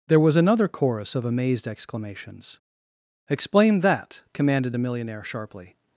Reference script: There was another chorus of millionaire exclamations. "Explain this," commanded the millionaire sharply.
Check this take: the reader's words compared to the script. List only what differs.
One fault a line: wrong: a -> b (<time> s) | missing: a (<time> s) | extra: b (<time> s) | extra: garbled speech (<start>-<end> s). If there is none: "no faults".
wrong: millionaire -> amazed (1.3 s)
wrong: this -> that (3.8 s)